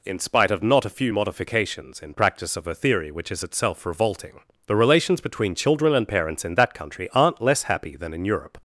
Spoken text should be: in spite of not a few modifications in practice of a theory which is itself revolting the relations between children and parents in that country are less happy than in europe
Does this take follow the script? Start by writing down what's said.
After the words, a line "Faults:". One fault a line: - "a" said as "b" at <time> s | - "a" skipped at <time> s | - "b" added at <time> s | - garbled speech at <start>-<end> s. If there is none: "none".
in spite of not a few modifications in practice of a theory which is itself revolting the relations between children and parents in that country aren't less happy than in europe
Faults:
- "are" said as "aren't" at 7.1 s